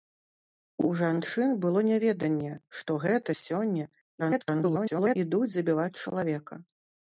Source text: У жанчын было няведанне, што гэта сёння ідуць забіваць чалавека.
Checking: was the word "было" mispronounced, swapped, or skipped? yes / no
no